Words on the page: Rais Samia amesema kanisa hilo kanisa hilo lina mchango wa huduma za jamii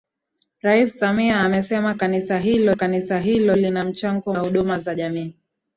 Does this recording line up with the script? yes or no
yes